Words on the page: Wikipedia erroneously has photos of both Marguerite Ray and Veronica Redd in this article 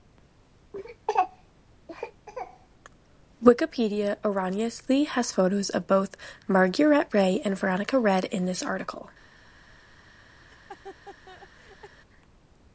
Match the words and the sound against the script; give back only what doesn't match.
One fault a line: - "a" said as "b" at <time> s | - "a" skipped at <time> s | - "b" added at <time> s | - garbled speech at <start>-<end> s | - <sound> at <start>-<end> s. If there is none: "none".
- laugh at 10.4-12.0 s